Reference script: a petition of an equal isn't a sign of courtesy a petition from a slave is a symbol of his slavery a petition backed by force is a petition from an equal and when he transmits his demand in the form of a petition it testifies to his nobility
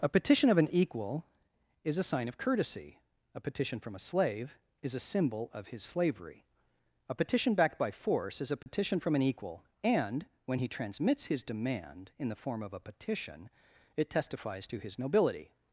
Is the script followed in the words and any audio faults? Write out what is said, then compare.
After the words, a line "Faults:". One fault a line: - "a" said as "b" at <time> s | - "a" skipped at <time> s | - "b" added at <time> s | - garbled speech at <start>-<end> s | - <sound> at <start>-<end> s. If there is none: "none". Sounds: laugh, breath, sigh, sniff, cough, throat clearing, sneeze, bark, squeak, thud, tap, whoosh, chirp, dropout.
a petition of an equal is a sign of courtesy a petition from a slave is a symbol of his slavery a petition backed by force is a petition from an equal and when he transmits his demand in the form of a petition it testifies to his nobility
Faults:
- "isn't" said as "is" at 1.8 s
- dropout at 8.6-8.7 s